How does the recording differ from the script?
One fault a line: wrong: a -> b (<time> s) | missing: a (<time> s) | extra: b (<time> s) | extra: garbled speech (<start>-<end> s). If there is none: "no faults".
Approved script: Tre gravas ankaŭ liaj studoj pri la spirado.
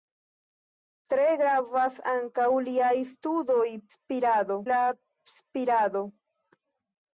wrong: pri -> spirado (3.9 s)